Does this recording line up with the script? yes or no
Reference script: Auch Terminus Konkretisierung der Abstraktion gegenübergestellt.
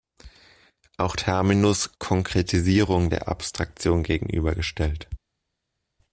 yes